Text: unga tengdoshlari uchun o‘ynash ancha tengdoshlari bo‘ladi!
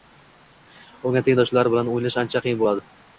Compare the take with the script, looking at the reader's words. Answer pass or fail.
fail